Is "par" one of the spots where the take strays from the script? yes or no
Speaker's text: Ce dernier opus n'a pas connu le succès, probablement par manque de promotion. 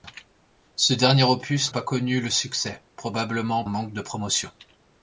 yes